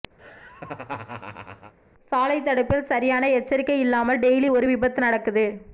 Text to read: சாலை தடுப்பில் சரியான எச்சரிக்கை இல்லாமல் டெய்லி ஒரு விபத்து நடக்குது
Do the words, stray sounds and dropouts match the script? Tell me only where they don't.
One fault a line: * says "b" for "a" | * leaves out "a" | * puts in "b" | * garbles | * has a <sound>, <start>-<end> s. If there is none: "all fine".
* has a laugh, 0.2-1.7 s